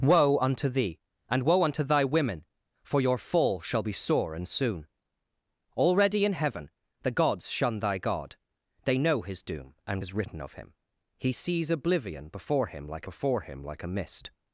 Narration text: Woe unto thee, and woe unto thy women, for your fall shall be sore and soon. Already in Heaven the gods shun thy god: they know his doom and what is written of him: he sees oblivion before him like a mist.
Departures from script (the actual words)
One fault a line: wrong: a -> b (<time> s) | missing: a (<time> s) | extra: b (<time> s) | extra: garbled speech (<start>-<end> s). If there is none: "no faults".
missing: what (10.0 s)
extra: before him like (13.0 s)